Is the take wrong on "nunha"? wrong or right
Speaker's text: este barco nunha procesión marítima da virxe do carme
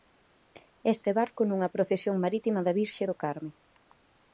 right